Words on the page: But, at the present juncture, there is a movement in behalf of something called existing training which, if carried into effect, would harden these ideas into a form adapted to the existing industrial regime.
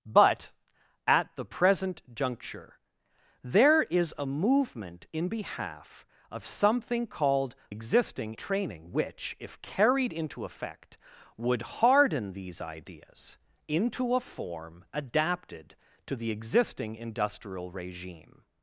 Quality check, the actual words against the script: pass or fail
pass